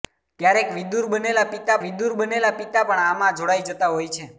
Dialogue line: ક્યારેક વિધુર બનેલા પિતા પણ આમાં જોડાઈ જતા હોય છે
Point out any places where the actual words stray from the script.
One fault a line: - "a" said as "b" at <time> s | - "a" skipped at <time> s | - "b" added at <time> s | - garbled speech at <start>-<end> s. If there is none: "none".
- "વિધુર બનેલા પિતા" added at 1.8 s